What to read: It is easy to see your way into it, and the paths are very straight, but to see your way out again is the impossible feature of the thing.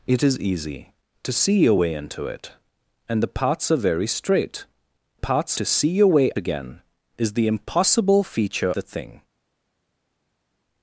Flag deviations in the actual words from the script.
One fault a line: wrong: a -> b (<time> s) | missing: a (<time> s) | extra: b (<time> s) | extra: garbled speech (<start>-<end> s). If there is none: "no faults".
wrong: but -> paths (5.1 s)
missing: out (6.3 s)
missing: of (8.7 s)